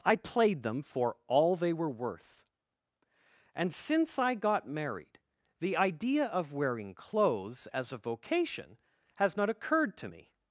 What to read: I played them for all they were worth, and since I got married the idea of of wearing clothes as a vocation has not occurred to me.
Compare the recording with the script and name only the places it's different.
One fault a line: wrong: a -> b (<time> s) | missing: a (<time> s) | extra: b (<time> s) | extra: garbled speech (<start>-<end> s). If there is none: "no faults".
missing: of (6.5 s)